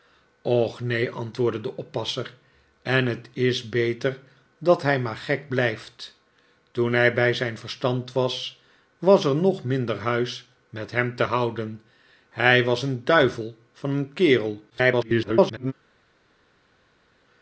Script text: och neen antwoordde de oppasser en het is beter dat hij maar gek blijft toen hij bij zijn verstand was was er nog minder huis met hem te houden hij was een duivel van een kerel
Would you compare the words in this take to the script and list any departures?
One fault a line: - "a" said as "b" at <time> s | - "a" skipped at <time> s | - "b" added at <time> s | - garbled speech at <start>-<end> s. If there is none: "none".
- garbled speech at 14.7-15.7 s